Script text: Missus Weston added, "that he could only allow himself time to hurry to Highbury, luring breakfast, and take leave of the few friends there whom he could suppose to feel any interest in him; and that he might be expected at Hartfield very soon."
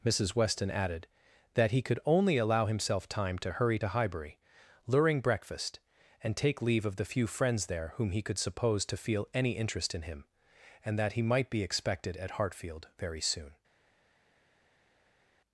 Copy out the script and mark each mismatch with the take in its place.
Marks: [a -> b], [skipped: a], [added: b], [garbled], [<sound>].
Missus Weston added, "that he could only allow himself time to hurry to Highbury, luring breakfast, and take leave of the few friends there whom he could suppose to feel any interest in him; and that he might be expected at Hartfield very soon."